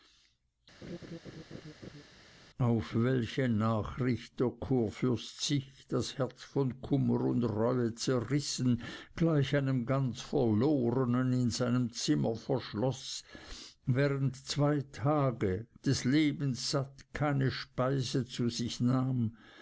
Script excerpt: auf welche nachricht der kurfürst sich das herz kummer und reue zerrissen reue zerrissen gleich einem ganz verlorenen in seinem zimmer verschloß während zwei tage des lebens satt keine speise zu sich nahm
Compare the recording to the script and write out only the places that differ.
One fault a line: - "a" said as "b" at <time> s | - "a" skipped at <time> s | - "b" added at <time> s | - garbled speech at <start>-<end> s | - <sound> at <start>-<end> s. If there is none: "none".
- laugh at 0.8-2.0 s
- "von" added at 6.4 s
- "reue zerrissen" skipped at 8.8 s